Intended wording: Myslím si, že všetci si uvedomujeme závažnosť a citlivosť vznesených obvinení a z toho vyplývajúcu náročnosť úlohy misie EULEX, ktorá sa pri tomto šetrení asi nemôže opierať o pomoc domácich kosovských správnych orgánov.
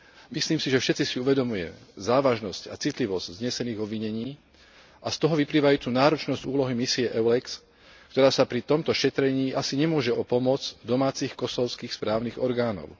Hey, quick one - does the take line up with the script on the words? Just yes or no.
no